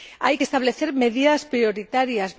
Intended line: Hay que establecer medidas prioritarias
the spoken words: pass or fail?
pass